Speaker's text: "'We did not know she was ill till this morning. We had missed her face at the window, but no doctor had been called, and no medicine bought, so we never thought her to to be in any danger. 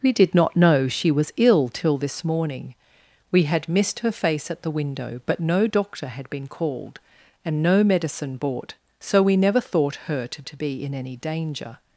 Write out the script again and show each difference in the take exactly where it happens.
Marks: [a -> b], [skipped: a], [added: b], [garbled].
"'We did not know she was ill till this morning. We had missed her face at the window, but no doctor had been called, and no medicine bought, so we never thought her to to be in any danger.